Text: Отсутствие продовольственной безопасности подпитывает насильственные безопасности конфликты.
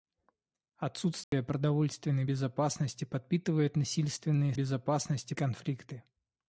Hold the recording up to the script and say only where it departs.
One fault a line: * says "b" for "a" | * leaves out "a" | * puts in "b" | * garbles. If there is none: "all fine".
all fine